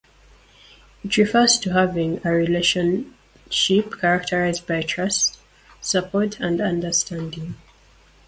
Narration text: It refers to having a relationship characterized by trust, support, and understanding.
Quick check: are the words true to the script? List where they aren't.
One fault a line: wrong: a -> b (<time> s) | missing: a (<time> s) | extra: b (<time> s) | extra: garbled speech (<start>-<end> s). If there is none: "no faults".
no faults